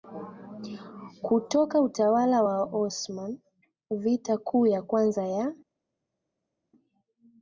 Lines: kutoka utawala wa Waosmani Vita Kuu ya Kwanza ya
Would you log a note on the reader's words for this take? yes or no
no